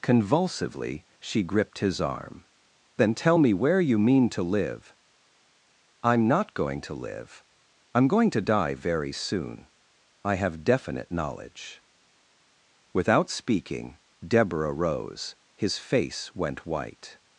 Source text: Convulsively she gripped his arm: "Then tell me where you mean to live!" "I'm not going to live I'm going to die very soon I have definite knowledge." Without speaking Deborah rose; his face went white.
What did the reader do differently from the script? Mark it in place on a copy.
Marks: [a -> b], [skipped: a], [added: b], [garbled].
Convulsively she gripped his arm: "Then tell me where you mean to live!" "I'm not going to live I'm going to die very soon I have definite knowledge." Without speaking Deborah rose; his face went white.